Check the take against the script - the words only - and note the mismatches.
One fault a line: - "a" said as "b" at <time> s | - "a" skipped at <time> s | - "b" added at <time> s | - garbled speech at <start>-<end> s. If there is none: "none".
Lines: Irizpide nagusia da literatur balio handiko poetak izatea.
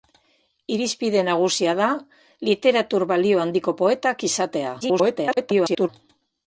- garbled speech at 4.8-5.9 s